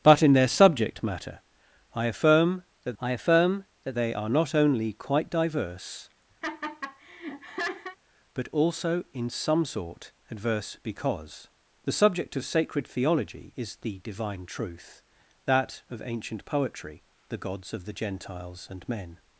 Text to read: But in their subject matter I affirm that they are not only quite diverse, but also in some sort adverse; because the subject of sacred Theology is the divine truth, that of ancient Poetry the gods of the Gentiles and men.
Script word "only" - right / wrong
right